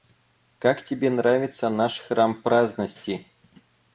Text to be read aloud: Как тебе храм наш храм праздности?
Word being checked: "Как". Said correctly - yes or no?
yes